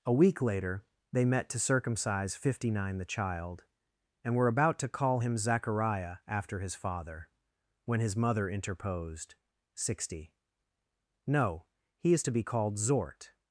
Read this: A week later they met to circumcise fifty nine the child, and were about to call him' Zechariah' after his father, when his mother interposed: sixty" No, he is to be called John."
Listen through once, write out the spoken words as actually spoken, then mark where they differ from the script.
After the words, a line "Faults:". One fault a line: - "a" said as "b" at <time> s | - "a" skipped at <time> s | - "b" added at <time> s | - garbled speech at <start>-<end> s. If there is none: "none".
A week later they met to circumcise fifty nine the child, and were about to call him' Zechariah' after his father, when his mother interposed: sixty" No, he is to be called Zort."
Faults:
- "John" said as "Zort" at 12.8 s